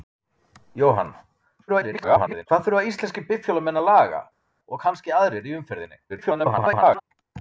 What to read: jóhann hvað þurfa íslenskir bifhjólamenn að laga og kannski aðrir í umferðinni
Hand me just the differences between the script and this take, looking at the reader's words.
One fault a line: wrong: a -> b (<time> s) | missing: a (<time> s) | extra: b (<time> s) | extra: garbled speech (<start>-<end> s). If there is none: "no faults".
extra: garbled speech (1.7-2.5 s)
extra: garbled speech (6.1-7.0 s)